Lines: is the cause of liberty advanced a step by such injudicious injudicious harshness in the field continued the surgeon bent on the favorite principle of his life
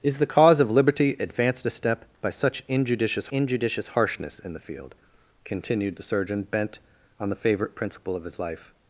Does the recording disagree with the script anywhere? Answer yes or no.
no